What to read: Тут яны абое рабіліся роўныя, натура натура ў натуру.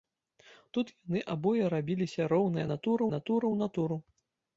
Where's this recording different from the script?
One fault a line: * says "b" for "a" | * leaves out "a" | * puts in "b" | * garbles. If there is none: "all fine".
all fine